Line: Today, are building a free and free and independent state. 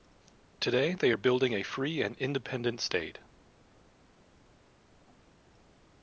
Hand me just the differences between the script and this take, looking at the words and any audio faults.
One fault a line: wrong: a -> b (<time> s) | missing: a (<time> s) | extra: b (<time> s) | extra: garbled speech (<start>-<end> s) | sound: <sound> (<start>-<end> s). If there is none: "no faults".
extra: they (0.9 s)
missing: free and (2.1 s)